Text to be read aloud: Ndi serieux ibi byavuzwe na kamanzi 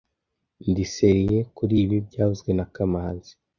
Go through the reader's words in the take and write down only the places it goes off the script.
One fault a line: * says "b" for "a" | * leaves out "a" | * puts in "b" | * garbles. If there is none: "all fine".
* puts in "kuri"